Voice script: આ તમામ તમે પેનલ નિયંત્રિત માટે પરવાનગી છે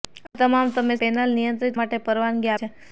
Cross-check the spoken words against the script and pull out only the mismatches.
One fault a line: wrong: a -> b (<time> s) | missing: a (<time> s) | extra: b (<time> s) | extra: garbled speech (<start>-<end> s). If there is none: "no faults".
no faults